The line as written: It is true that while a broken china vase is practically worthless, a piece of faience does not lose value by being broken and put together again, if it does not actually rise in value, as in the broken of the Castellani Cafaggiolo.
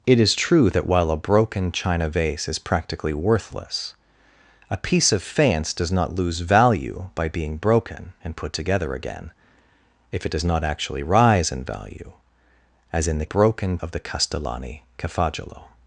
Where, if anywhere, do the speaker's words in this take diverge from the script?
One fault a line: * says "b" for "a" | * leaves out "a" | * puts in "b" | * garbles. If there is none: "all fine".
all fine